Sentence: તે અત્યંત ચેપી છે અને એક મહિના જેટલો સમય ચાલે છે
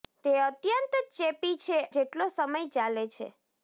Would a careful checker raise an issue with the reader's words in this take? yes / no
yes